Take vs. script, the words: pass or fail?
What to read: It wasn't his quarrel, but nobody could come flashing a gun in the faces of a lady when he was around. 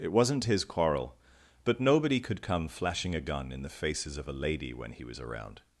pass